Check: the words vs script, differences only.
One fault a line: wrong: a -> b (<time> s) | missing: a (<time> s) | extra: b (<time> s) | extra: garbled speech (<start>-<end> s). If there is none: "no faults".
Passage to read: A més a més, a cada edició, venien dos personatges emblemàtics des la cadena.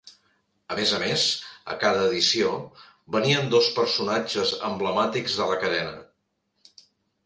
wrong: des -> de (5.4 s)